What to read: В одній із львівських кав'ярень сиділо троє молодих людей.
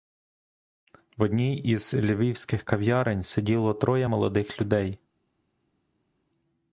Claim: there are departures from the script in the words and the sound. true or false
false